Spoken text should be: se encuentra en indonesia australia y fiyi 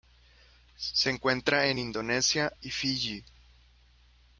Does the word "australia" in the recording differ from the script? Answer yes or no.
yes